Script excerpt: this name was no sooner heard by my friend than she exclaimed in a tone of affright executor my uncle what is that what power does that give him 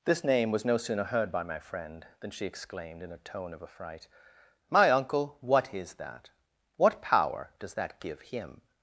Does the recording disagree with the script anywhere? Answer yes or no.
yes